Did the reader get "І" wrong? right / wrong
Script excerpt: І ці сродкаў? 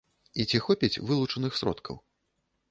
right